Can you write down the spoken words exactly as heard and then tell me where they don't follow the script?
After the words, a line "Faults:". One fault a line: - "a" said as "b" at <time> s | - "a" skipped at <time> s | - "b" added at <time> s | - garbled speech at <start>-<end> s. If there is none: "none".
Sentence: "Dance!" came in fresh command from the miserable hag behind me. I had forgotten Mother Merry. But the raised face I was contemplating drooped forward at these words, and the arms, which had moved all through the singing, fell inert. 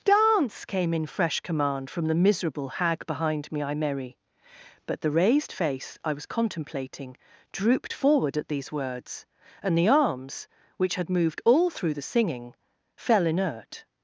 "Dance!" came in fresh command from the miserable hag behind me. I Merry. But the raised face I was contemplating drooped forward at these words, and the arms, which had moved all through the singing, fell inert.
Faults:
- "had forgotten Mother" skipped at 3.8 s